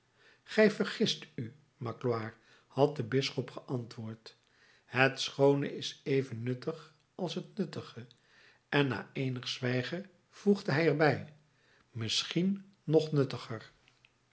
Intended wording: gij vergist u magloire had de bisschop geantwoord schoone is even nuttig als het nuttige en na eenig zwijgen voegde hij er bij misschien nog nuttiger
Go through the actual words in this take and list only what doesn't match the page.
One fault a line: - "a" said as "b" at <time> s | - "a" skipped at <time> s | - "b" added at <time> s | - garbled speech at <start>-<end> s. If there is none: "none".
- "het" added at 4.8 s